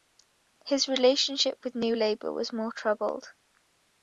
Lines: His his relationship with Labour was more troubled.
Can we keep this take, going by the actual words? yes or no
no